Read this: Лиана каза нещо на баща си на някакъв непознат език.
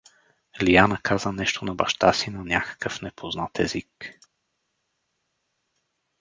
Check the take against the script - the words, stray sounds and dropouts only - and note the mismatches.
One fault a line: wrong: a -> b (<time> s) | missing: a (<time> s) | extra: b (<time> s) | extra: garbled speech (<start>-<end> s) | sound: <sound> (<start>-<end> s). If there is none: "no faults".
no faults